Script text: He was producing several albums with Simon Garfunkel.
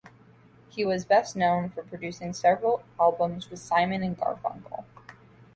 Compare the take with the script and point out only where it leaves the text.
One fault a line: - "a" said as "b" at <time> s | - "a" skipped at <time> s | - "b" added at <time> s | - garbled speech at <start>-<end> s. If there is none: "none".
- "best known for" added at 1.0 s
- "and" added at 4.0 s